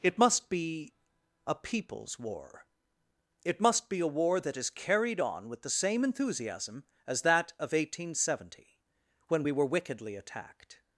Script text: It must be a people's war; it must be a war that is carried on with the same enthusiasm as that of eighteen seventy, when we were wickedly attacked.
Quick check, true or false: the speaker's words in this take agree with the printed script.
true